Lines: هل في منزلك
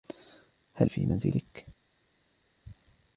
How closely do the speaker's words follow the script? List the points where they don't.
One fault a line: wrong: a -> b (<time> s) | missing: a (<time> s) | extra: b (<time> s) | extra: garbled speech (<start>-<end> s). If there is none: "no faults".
no faults